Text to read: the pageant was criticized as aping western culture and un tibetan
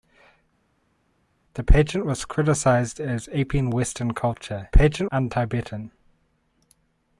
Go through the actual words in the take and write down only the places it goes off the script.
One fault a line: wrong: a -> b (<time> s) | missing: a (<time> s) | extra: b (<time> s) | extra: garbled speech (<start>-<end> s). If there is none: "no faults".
wrong: and -> pageant (4.7 s)